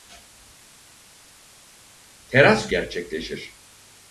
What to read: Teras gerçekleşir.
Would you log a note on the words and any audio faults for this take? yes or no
no